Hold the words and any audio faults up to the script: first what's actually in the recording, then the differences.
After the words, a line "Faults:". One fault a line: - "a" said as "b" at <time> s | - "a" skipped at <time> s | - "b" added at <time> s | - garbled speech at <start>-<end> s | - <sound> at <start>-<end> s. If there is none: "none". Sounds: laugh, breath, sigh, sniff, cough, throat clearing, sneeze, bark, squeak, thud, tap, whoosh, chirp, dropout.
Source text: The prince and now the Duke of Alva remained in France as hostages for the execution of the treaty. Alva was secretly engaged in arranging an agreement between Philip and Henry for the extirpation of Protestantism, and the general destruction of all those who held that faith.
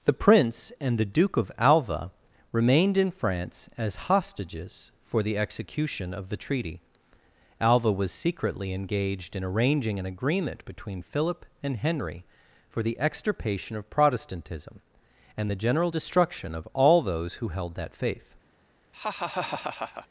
The prince and the Duke of Alva remained in France as hostages for the execution of the treaty. Alva was secretly engaged in arranging an agreement between Philip and Henry for the extirpation of Protestantism, and the general destruction of all those who held that faith.
Faults:
- "now" skipped at 1.0 s
- laugh at 18.9-20.1 s